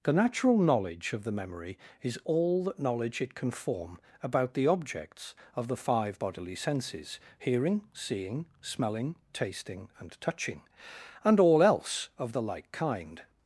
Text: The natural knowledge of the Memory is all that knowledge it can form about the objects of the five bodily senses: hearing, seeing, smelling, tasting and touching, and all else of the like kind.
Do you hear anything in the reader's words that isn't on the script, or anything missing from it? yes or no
no